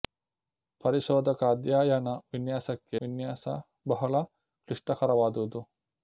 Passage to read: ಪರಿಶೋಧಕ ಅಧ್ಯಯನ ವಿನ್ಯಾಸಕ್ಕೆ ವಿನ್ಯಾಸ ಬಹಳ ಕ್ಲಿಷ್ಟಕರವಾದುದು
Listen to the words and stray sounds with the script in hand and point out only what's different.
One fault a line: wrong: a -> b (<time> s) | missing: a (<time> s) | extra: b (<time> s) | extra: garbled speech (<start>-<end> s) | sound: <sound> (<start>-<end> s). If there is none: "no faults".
no faults